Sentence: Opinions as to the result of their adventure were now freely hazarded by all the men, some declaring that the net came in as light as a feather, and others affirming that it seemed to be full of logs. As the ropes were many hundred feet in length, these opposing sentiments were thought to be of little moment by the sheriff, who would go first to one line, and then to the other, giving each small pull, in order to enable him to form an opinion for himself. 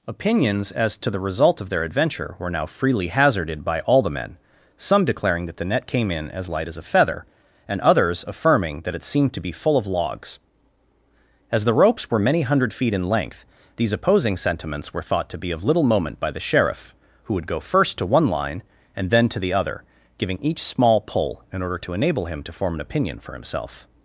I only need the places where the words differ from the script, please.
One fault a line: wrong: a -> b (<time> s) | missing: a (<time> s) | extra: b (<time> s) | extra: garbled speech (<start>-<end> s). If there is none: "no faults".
no faults